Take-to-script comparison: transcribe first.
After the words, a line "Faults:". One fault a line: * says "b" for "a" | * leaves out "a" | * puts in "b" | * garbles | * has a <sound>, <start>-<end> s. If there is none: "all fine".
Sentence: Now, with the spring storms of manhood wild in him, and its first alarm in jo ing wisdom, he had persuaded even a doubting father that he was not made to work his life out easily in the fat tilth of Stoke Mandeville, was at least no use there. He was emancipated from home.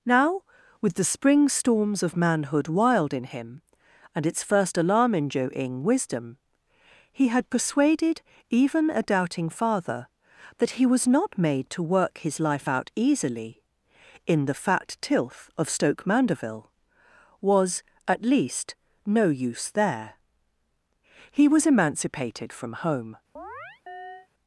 Now, with the spring storms of manhood wild in him, and its first alarm in jo ing wisdom, he had persuaded even a doubting father that he was not made to work his life out easily in the fat tilth of Stoke Mandeville, was at least no use there. He was emancipated from home.
Faults:
* has a chirp, 23.4-24.3 s